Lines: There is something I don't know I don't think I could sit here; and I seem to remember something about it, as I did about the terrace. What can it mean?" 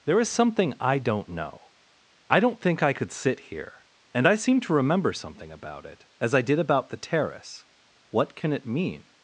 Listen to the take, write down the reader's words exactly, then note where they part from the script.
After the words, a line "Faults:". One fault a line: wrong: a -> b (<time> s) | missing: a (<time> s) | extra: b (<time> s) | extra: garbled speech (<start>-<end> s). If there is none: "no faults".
There is something I don't know I don't think I could sit here; and I seem to remember something about it, as I did about the terrace. What can it mean?"
Faults:
no faults